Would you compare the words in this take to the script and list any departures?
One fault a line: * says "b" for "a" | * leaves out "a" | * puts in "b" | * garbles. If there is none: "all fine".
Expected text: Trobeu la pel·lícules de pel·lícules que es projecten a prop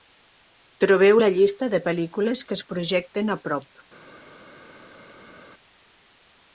* says "llista" for "pel·lícules"